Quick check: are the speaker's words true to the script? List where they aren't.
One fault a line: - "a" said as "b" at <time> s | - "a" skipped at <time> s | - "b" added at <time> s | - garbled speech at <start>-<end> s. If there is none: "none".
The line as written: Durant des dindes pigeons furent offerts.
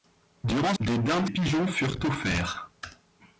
none